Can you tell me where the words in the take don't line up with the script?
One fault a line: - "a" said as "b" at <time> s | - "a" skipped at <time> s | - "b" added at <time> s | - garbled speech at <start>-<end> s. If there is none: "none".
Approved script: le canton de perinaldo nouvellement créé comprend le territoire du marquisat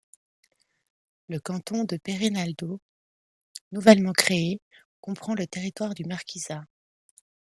none